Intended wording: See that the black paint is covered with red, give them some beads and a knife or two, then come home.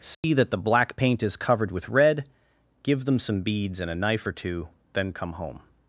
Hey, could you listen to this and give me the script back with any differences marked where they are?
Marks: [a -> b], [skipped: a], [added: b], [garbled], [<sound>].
See [dropout] that the black paint is covered with red, give them some beads and a knife or two, then come home.